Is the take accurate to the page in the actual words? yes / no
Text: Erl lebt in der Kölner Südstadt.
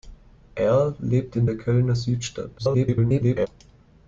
no